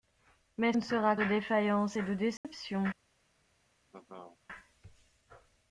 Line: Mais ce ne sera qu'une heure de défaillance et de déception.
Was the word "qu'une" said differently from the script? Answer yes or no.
yes